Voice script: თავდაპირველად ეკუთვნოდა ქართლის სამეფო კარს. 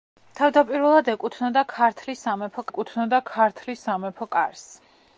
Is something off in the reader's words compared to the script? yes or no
yes